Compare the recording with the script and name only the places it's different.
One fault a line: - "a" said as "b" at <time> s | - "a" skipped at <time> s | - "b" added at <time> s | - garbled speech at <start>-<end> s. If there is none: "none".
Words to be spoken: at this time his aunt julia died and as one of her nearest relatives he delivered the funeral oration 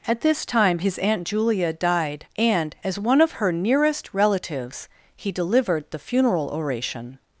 none